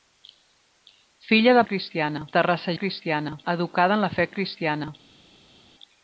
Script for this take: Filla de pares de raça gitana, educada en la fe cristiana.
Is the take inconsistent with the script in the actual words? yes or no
yes